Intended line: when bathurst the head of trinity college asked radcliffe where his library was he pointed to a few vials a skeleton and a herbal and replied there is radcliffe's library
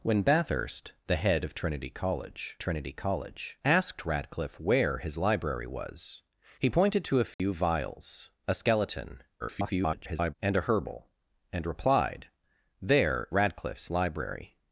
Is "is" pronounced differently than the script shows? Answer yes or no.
yes